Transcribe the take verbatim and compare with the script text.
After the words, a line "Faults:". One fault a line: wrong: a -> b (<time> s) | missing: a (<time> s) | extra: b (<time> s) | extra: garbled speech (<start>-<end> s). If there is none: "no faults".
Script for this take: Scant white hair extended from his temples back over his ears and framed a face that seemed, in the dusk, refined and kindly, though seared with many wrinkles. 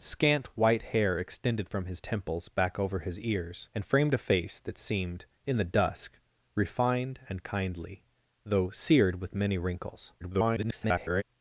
Scant white hair extended from his temples back over his ears and framed a face that seemed, in the dusk, refined and kindly, though seared with many wrinkles. [garbled]
Faults:
extra: garbled speech (10.2-11.2 s)